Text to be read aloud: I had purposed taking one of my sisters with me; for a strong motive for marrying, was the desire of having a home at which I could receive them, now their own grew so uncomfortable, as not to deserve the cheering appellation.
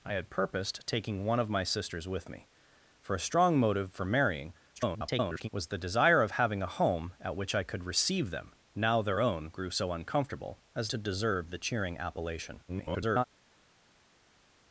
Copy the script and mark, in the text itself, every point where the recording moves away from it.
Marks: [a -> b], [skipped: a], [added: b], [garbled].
I had purposed taking one of my sisters with me; for a strong motive for marrying, [garbled] was the desire of having a home at which I could receive them, now their own grew so uncomfortable, as [skipped: not] to deserve the cheering appellation. [garbled]